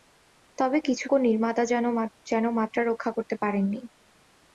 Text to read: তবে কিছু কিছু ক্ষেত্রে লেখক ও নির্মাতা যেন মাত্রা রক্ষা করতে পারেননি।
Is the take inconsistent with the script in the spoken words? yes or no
yes